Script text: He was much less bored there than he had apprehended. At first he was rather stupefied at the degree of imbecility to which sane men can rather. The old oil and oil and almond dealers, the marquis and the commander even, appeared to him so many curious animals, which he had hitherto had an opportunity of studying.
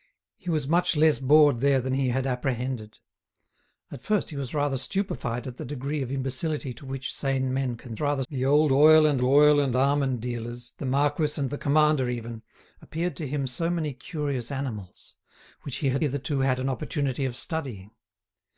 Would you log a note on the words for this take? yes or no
no